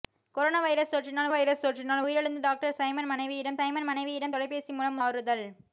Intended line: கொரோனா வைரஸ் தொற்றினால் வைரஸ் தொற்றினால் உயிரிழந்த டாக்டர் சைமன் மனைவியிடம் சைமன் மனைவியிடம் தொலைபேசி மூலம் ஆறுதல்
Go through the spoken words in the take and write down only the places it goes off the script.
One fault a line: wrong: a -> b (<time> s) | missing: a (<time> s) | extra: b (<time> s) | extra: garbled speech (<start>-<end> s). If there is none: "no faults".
no faults